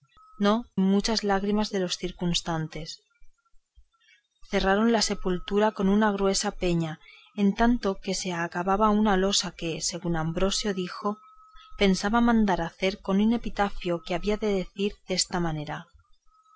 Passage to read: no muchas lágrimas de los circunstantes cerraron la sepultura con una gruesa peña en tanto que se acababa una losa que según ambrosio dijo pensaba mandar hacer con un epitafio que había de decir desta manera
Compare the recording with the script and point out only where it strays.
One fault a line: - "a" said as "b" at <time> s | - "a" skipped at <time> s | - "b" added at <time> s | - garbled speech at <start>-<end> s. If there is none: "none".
none